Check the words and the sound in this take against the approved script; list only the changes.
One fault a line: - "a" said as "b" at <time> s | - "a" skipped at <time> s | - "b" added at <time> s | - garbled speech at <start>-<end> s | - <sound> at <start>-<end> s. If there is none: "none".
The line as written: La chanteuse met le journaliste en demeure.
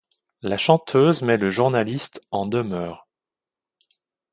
none